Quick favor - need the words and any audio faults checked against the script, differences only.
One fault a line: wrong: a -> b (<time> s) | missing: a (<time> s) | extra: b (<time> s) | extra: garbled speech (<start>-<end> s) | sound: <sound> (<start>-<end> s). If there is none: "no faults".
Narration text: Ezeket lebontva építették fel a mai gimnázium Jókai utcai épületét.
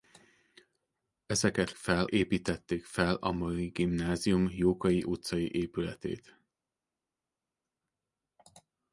wrong: lebontva -> fel (1.8 s)